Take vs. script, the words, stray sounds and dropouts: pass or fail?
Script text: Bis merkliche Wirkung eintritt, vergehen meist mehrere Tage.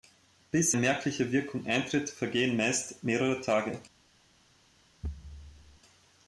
fail